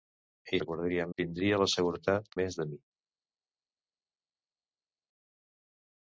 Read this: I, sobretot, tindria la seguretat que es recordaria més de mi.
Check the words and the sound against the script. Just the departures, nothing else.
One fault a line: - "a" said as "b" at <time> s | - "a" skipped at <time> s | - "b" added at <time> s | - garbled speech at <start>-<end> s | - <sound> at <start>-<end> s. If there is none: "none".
- "sobretot" said as "recordaria" at 0.6 s
- "que es recordaria" skipped at 2.3 s